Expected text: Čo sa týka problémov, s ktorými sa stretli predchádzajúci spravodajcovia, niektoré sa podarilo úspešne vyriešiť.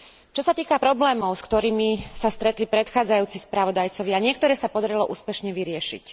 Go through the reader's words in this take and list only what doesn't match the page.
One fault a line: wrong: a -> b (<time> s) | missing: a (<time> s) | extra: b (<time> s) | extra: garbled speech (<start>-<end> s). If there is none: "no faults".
no faults